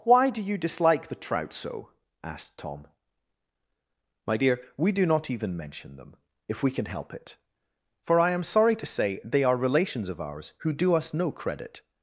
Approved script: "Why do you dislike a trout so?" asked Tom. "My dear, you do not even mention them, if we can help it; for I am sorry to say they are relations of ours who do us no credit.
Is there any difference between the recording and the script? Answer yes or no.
yes